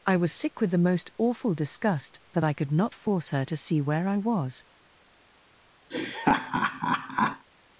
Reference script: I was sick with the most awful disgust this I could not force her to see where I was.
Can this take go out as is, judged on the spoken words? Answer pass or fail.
fail